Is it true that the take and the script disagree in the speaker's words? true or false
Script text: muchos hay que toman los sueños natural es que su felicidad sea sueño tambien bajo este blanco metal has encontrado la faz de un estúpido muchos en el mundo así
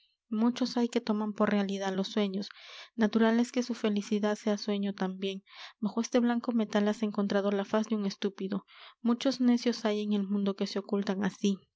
true